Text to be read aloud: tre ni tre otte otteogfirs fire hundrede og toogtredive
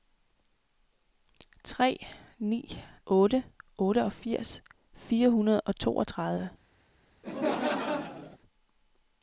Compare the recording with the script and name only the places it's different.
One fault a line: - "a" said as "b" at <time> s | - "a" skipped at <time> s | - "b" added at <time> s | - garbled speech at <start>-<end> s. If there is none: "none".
- "tre" skipped at 2.8 s